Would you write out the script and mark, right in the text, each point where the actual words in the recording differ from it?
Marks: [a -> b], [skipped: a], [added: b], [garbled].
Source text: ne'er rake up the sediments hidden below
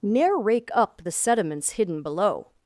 ne'er rake up the sediments hidden below